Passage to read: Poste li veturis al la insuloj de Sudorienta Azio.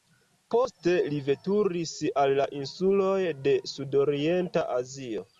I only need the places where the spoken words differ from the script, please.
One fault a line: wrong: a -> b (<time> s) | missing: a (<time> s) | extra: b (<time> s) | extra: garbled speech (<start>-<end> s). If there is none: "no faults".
no faults